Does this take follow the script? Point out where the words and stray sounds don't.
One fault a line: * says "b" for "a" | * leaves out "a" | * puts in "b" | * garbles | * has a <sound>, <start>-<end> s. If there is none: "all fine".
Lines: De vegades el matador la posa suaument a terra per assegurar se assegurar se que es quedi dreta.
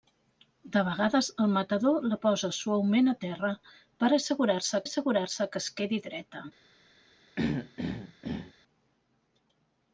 * has a throat clearing, 7.4-8.5 s